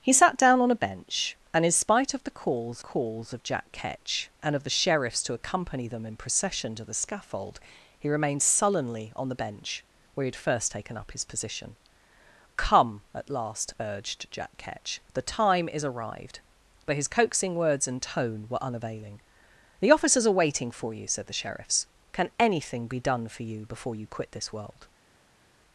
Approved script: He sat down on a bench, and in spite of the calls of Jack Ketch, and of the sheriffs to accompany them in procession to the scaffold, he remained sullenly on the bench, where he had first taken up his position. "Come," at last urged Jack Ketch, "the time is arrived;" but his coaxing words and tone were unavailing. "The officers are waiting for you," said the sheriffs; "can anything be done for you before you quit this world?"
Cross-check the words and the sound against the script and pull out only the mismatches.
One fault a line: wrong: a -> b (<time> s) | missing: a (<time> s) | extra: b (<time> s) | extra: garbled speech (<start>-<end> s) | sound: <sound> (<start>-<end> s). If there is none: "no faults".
extra: calls (2.8 s)